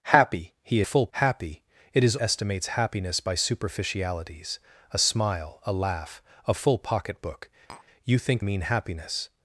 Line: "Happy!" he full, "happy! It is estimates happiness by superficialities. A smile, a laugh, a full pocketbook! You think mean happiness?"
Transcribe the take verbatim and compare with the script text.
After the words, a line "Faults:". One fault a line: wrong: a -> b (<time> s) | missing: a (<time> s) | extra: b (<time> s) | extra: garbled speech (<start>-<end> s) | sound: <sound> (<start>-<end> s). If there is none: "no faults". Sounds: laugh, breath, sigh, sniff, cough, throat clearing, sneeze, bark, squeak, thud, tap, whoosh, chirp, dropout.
"Happy!" he full, "happy! It is estimates happiness by superficialities. A smile, a laugh, a full pocketbook! You think mean happiness?"
Faults:
sound: tap (7.7-7.9 s)